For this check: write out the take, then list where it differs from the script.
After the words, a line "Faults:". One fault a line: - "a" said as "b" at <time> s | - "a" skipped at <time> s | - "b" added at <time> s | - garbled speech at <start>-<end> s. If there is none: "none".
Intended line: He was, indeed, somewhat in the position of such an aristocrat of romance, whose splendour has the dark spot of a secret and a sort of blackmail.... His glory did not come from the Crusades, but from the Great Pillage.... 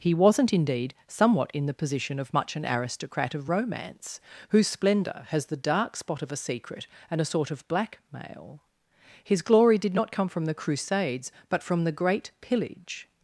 He wasn't, indeed, somewhat in the position of much an aristocrat of romance, whose splendour has the dark spot of a secret and a sort of blackmail.... His glory did not come from the Crusades, but from the Great Pillage....
Faults:
- "was" said as "wasn't" at 0.1 s
- "such" said as "much" at 2.3 s